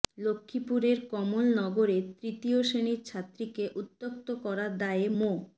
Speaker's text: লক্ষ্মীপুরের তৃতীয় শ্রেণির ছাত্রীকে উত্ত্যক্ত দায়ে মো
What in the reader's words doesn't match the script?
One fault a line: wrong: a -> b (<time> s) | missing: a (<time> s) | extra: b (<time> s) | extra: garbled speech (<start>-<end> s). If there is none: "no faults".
extra: কমলনগরে (1.1 s)
extra: করার (4.4 s)